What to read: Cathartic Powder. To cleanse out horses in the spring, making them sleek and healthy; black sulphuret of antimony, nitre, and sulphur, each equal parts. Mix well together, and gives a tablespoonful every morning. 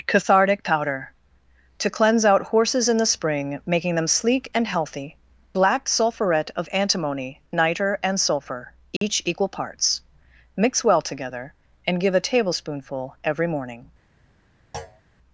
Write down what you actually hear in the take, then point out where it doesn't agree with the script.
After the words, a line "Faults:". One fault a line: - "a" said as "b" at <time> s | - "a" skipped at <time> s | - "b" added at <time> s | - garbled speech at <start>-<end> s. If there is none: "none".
Cathartic Powder. To cleanse out horses in the spring, making them sleek and healthy; black sulphuret of antimony, nitre, and sulphur, each equal parts. Mix well together, and give a tablespoonful every morning.
Faults:
- "gives" said as "give" at 12.0 s